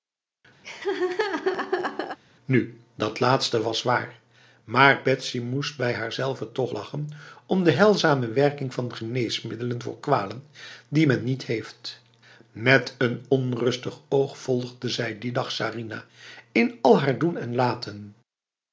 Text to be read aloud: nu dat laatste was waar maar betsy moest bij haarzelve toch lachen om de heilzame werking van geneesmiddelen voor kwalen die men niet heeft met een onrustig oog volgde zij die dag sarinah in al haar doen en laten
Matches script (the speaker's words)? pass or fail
pass